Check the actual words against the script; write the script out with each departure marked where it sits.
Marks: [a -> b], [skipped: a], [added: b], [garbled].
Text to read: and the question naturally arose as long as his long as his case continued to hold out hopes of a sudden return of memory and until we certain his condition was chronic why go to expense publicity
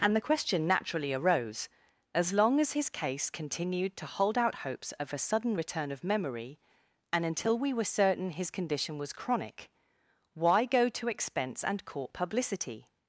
and the question naturally arose as long as his [skipped: long as his] case continued to hold out hopes of a sudden return of memory and until we [added: were] certain his condition was chronic why go to expense [added: and court] publicity